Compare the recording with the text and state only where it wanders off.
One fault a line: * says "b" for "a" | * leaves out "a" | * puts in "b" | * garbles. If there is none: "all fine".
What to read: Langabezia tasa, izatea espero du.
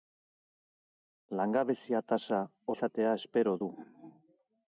all fine